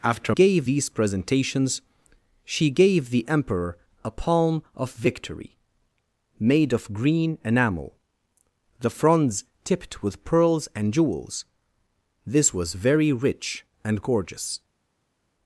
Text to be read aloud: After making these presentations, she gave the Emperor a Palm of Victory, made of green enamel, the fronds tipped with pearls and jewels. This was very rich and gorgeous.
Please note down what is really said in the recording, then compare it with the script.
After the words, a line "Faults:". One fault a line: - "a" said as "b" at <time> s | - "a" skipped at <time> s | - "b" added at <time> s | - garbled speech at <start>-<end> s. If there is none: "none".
After gave these presentations, she gave the Emperor a Palm of Victory, made of green enamel, the fronds tipped with pearls and jewels. This was very rich and gorgeous.
Faults:
- "making" said as "gave" at 0.3 s